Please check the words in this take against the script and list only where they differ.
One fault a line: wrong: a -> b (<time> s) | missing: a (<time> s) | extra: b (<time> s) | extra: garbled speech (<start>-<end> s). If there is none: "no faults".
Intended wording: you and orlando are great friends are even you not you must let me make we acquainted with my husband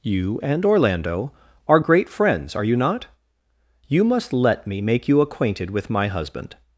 missing: even (2.6 s)
wrong: we -> you (5.1 s)